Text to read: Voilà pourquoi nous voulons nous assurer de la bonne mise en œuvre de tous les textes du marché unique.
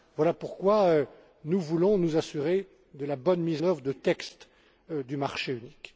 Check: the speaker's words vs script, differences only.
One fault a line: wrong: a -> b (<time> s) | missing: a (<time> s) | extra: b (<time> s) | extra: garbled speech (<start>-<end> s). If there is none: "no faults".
missing: en (3.6 s)
missing: tous les (3.9 s)